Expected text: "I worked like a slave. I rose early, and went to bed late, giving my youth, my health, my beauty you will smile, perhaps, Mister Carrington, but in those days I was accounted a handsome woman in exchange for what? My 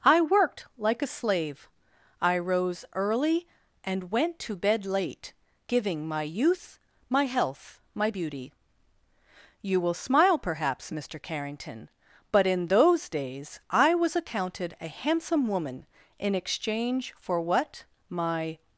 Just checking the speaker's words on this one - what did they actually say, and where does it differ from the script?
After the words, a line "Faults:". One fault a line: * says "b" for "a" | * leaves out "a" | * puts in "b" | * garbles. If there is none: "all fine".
"I worked like a slave. I rose early, and went to bed late, giving my youth, my health, my beauty you will smile, perhaps, Mister Carrington, but in those days I was accounted a handsome woman in exchange for what? My
Faults:
all fine